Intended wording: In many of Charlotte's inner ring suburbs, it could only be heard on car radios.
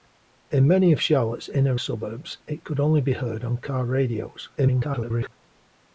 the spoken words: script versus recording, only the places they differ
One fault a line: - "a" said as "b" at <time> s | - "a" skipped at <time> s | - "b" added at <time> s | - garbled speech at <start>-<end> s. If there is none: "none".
- "ring" skipped at 1.8 s
- garbled speech at 4.6-5.3 s